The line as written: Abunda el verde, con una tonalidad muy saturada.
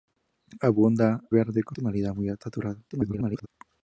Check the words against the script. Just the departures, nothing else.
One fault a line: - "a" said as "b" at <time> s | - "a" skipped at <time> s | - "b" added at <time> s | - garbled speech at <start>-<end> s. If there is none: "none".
- "el" skipped at 1.2 s
- "una" skipped at 1.8 s
- garbled speech at 2.9-3.5 s